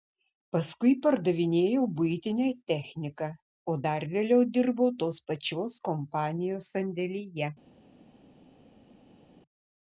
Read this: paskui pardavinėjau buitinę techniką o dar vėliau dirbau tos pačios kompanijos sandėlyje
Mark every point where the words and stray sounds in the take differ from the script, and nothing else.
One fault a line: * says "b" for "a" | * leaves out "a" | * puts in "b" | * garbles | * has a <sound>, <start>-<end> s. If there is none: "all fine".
all fine